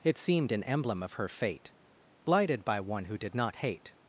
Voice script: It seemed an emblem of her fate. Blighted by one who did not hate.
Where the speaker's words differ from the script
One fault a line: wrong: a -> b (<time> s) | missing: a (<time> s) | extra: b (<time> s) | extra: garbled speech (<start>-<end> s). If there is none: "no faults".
no faults